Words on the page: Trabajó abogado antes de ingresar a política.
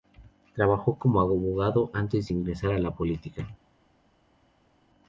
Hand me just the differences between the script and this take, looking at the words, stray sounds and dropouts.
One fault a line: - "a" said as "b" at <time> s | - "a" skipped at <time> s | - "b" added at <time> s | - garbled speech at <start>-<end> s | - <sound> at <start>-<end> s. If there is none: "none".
- "como" added at 1.0 s
- "la" added at 2.8 s